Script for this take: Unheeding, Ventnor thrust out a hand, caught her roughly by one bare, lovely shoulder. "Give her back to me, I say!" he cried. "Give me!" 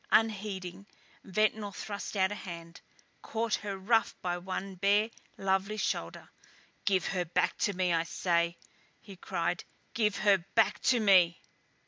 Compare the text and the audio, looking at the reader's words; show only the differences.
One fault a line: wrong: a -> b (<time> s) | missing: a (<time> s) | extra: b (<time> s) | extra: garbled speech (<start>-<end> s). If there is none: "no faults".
extra: her back to (10.2 s)